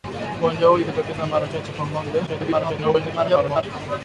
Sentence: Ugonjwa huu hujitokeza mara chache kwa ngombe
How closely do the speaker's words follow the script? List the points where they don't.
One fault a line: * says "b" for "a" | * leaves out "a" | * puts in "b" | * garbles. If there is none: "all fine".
* garbles